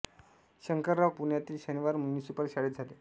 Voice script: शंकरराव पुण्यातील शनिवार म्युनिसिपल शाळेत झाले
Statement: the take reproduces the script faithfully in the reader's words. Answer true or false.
true